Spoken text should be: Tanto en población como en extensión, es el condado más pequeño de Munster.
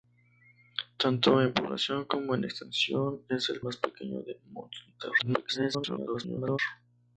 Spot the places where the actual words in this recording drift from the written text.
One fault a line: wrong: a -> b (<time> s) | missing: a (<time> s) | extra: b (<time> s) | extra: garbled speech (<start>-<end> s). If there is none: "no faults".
missing: condado (3.6 s)
extra: garbled speech (5.2-6.6 s)